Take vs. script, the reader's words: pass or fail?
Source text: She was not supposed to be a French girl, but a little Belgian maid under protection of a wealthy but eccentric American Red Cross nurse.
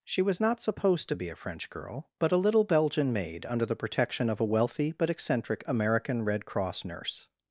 fail